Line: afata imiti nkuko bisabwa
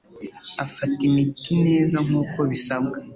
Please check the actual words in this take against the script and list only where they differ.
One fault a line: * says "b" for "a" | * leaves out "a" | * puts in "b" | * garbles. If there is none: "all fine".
* puts in "neza"